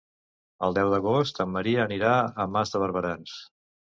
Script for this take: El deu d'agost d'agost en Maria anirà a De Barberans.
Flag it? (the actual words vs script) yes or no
yes